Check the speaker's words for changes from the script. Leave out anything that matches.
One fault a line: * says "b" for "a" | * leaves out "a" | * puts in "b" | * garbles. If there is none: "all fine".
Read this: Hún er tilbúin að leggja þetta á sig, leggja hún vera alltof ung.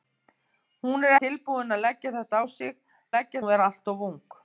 all fine